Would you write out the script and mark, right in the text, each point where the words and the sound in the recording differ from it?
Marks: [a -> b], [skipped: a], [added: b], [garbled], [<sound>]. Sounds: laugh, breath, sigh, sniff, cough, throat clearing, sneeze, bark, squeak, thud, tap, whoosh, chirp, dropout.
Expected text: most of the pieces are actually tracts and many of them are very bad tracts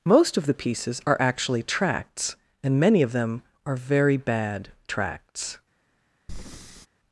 most of the pieces are actually tracts and many of them are very bad tracts [breath]